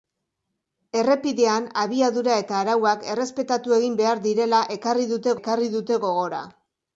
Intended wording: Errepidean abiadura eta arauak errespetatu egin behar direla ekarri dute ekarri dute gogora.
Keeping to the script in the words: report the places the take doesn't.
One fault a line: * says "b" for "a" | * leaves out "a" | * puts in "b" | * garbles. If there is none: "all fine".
all fine